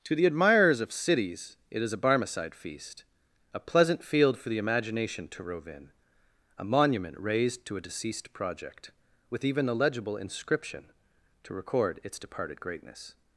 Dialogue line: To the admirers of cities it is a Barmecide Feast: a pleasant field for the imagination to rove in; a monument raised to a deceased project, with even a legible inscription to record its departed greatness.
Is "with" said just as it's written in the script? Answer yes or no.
yes